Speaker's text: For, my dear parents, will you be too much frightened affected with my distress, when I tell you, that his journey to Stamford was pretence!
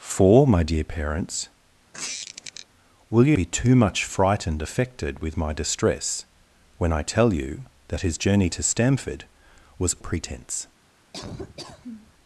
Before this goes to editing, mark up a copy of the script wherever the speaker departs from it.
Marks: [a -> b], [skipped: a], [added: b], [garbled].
For, my dear parents, will you be too much frightened affected with my distress, when I tell you, that his journey to Stamford was pretence!